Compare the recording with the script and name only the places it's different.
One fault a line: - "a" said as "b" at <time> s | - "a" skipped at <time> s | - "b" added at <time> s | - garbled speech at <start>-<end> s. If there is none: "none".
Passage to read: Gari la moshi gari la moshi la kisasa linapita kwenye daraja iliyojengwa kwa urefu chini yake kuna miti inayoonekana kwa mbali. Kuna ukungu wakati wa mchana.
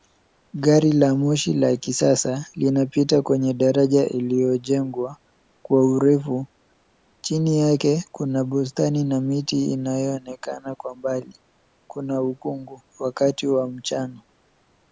- "gari" skipped at 1.5 s
- "moshi la" skipped at 1.8 s
- "bustani na" added at 8.4 s